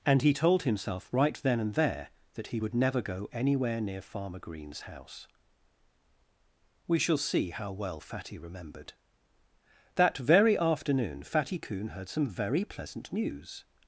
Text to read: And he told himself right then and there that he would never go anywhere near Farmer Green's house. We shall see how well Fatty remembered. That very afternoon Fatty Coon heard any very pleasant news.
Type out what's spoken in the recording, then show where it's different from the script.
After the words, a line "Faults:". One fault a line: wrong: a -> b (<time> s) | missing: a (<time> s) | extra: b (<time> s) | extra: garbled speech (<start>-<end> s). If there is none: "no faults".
And he told himself right then and there that he would never go anywhere near Farmer Green's house. We shall see how well Fatty remembered. That very afternoon Fatty Coon heard some very pleasant news.
Faults:
wrong: any -> some (12.1 s)